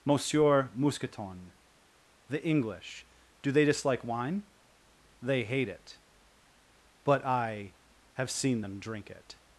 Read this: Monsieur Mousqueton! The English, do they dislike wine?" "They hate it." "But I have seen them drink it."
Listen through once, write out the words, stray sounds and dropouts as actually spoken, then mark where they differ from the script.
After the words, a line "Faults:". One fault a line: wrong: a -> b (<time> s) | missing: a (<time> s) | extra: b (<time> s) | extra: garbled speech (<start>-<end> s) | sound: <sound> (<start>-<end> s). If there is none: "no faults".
Monsieur Mousqueton! The English, do they dislike wine?" "They hate it." "But I have seen them drink it."
Faults:
no faults